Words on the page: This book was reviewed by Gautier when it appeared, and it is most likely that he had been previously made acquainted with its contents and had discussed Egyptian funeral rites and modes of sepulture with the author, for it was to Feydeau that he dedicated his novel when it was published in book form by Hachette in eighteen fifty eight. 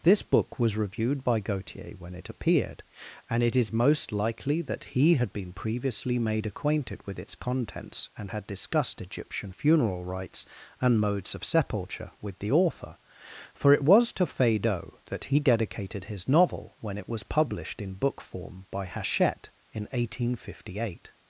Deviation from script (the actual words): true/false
false